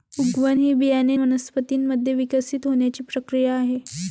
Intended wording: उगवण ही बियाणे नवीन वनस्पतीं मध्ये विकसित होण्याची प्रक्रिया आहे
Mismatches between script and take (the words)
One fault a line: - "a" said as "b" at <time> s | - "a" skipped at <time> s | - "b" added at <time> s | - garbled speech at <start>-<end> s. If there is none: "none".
- "नवीन" skipped at 1.2 s